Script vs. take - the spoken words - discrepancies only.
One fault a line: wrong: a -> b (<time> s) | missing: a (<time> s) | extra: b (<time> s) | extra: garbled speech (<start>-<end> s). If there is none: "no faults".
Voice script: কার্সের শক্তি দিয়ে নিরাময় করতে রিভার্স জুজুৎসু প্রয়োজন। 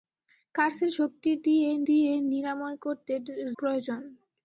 extra: দিয়ে (1.9 s)
missing: রিভার্স জুজুৎসু (3.1 s)